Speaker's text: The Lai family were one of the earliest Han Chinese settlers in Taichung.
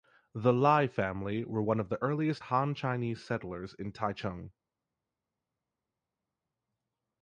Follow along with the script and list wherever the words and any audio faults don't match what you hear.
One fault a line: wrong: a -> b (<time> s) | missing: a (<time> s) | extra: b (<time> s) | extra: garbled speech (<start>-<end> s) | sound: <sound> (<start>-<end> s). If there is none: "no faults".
no faults